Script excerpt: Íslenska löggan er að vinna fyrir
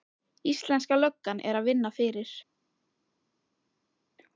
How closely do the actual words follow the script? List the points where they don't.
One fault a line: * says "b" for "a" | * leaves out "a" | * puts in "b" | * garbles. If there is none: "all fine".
all fine